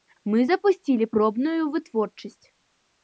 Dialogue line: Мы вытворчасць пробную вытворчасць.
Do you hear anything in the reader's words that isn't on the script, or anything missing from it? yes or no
yes